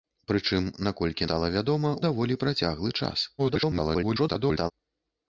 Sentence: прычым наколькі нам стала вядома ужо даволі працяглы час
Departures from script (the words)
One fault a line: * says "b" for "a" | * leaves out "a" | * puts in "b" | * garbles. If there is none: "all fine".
* leaves out "нам"
* leaves out "ужо"
* garbles